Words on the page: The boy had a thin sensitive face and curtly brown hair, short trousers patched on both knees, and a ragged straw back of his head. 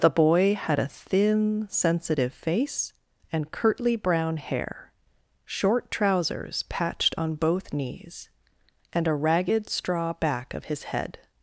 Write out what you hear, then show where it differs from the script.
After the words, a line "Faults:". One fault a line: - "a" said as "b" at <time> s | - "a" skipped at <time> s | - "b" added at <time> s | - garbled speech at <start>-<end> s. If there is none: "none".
The boy had a thin sensitive face and curtly brown hair, short trousers patched on both knees, and a ragged straw back of his head.
Faults:
none